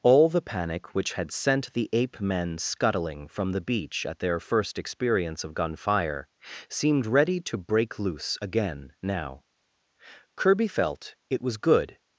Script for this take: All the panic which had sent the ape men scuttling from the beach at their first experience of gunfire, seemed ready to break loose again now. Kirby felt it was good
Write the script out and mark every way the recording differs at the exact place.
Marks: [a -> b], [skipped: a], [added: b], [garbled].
All the panic which had sent the ape men scuttling from the beach at their first experience of gunfire, seemed ready to break loose again now. Kirby felt it was good